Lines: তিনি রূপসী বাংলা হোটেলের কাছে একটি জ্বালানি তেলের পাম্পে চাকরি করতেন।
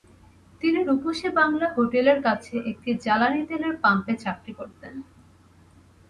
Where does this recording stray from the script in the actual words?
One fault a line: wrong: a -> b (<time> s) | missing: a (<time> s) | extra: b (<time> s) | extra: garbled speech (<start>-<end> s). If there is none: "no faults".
no faults